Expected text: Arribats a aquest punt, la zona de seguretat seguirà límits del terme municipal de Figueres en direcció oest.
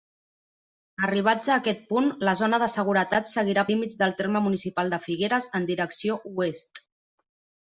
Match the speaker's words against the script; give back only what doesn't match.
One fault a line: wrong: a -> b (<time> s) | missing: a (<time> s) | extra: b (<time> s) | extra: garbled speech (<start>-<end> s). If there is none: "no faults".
no faults